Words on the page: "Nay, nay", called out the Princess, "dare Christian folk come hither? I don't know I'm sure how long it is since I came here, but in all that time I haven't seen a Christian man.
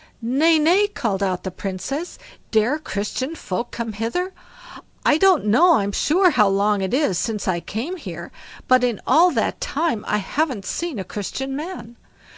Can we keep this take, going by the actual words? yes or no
yes